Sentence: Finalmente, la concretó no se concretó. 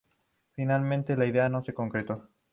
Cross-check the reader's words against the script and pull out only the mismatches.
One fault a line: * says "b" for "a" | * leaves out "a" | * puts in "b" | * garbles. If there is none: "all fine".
* says "idea" for "concretó"